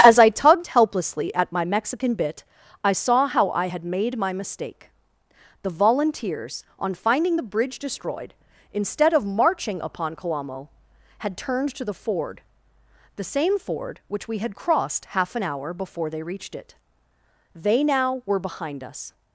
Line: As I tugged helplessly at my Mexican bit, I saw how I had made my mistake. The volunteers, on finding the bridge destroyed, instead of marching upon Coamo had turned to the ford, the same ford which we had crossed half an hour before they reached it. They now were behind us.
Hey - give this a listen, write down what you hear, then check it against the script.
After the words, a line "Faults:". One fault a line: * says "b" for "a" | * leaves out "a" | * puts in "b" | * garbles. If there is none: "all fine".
As I tugged helplessly at my Mexican bit, I saw how I had made my mistake. The volunteers, on finding the bridge destroyed, instead of marching upon Coamo had turned to the ford, the same ford which we had crossed half an hour before they reached it. They now were behind us.
Faults:
all fine